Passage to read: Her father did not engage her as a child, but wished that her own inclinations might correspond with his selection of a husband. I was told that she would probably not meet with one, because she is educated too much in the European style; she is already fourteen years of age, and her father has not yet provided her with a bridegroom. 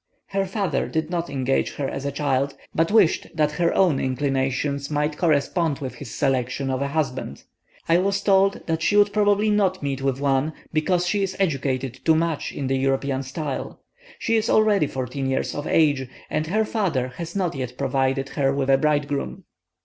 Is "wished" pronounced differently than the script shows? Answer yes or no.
no